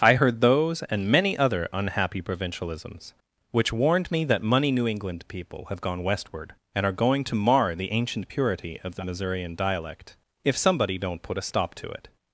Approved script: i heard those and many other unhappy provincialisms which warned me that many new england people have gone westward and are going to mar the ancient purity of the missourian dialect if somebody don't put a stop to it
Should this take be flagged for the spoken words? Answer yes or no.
yes